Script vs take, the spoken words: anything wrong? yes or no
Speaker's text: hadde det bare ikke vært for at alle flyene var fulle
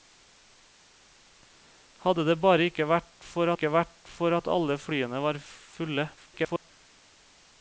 yes